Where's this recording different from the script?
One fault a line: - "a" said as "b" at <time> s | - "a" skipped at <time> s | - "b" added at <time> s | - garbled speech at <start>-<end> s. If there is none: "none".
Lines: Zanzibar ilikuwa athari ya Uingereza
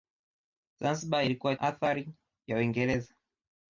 none